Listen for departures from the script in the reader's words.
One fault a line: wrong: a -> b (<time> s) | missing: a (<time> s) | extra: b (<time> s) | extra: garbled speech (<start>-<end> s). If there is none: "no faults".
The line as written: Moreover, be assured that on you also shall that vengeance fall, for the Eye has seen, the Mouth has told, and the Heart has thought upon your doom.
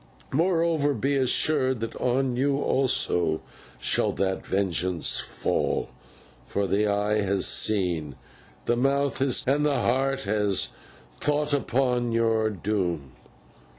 missing: told (9.4 s)